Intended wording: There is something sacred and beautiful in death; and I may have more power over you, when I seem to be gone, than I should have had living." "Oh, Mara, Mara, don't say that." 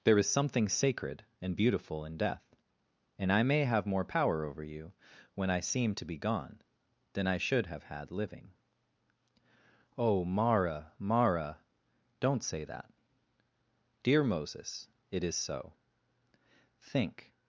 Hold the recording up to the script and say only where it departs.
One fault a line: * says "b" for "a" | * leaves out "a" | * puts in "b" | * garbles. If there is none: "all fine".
* puts in "Dear Moses it is so Think"